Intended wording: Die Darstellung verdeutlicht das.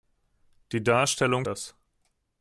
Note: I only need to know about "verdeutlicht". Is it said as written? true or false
false